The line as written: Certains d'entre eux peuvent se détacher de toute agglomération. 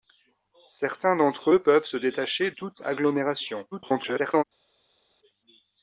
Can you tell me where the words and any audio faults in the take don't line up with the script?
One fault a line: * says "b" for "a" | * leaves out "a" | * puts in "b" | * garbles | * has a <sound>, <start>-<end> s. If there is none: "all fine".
* leaves out "de"
* garbles